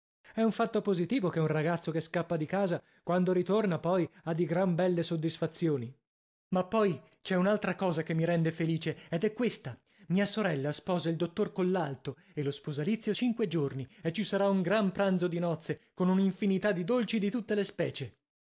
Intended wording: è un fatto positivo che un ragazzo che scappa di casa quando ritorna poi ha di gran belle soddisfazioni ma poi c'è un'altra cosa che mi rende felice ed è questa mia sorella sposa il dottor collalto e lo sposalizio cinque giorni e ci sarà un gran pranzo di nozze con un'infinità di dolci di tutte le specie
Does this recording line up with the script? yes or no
yes